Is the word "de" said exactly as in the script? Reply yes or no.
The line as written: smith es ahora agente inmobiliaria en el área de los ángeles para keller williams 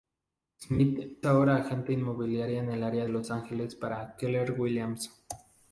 no